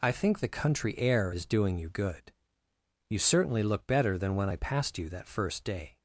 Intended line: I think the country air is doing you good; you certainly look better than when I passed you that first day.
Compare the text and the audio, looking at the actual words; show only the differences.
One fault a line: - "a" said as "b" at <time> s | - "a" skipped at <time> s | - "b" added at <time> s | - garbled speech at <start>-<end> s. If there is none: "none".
none